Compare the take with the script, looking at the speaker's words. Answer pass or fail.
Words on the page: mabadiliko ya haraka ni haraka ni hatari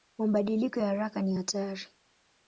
fail